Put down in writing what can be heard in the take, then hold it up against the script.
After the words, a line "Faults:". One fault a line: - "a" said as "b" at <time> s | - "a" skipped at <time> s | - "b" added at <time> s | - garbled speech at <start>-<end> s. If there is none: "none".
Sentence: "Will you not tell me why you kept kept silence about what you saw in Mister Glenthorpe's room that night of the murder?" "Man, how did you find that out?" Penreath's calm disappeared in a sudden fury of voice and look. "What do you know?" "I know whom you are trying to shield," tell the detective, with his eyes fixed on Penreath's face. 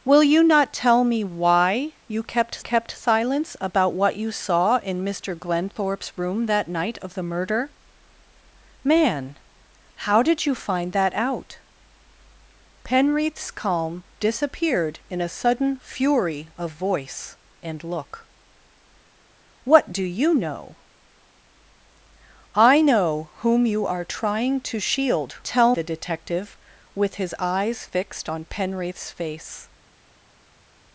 "Will you not tell me why you kept kept silence about what you saw in Mister Glenthorpe's room that night of the murder?" "Man, how did you find that out?" Penreath's calm disappeared in a sudden fury of voice and look. "What do you know?" "I know whom you are trying to shield," tell the detective, with his eyes fixed on Penreath's face.
Faults:
none